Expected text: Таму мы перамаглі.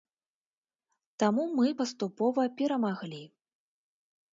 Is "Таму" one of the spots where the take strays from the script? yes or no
no